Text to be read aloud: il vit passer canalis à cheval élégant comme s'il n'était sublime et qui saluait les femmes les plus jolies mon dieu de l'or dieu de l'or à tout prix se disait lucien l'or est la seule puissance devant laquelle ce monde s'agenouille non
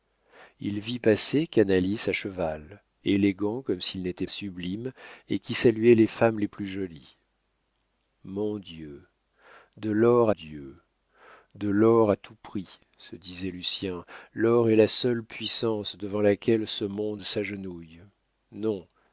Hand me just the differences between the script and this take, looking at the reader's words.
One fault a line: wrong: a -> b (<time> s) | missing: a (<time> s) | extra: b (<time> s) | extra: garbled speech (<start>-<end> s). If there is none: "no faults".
no faults